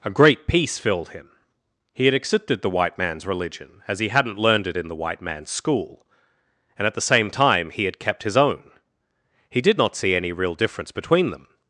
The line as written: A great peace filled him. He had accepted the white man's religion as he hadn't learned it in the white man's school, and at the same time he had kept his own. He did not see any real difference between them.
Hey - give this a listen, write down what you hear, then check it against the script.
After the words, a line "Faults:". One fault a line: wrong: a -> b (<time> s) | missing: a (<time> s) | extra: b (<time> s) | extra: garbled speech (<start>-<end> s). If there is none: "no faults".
A great peace filled him. He had accepted the white man's religion as he hadn't learned it in the white man's school, and at the same time he had kept his own. He did not see any real difference between them.
Faults:
no faults